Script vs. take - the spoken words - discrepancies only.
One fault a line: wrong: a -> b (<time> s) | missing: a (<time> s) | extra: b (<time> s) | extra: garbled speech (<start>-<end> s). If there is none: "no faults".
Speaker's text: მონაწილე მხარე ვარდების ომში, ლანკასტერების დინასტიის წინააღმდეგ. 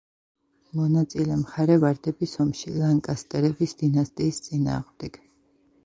no faults